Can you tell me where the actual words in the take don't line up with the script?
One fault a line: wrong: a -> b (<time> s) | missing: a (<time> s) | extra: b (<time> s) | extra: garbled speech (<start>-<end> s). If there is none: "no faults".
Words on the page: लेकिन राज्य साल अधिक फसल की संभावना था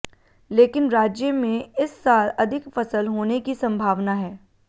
extra: में इस (1.3 s)
extra: होने (3.1 s)
wrong: था -> है (4.1 s)